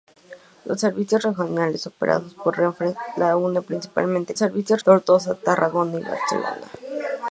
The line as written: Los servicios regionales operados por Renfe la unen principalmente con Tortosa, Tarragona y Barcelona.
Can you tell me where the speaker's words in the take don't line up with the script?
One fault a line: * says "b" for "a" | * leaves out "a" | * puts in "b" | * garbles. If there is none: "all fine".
* says "servicios" for "con"